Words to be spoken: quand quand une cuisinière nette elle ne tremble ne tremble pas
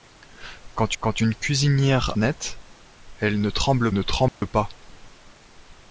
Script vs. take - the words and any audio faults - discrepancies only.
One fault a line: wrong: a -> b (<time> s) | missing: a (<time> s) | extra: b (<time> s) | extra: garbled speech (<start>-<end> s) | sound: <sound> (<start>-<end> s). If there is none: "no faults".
sound: dropout (4.3-4.4 s)